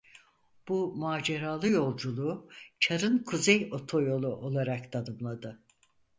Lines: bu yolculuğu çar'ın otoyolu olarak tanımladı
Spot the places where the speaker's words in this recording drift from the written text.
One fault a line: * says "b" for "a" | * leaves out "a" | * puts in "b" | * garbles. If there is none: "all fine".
* puts in "maceralı"
* puts in "kuzey"